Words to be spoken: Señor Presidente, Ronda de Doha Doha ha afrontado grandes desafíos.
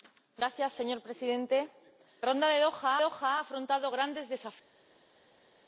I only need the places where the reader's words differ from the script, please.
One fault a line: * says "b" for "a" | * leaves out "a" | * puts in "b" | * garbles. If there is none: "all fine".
all fine